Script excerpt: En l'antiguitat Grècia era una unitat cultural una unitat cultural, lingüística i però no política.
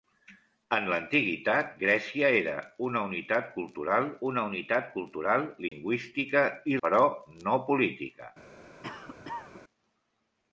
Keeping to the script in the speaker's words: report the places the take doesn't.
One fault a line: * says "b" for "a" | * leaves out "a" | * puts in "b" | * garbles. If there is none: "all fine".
all fine